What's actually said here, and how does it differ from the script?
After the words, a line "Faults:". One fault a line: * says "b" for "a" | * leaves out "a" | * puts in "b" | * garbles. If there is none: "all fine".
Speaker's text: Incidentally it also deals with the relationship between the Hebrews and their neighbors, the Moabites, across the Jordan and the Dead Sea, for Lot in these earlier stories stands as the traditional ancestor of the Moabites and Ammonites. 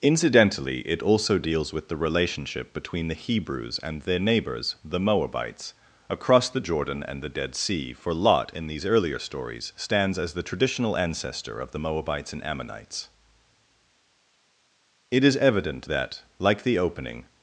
Incidentally it also deals with the relationship between the Hebrews and their neighbors, the Moabites, across the Jordan and the Dead Sea, for Lot in these earlier stories stands as the traditional ancestor of the Moabites and Ammonites. It is evident that, like the opening
Faults:
* puts in "It is evident that like the opening"